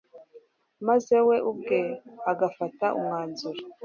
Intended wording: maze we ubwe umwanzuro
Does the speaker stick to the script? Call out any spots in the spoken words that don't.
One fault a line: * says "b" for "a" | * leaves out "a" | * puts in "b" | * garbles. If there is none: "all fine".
* puts in "agafata"